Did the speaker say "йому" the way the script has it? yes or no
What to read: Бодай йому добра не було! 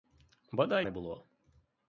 no